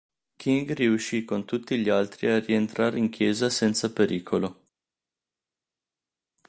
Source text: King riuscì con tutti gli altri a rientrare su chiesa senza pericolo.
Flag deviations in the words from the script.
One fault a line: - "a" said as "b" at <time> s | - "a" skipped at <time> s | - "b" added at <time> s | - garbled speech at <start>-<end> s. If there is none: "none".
- "su" said as "in" at 3.0 s